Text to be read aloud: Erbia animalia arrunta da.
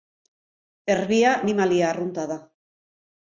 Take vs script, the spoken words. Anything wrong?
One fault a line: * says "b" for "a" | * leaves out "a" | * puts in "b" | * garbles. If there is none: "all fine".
all fine